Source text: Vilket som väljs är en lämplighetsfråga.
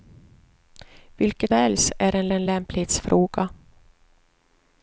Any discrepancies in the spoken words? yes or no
yes